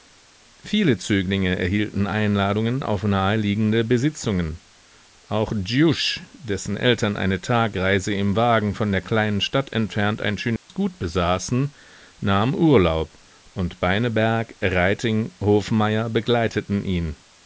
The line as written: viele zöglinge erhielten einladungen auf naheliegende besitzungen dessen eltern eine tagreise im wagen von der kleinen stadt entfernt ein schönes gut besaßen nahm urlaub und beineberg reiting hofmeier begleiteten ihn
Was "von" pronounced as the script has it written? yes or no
yes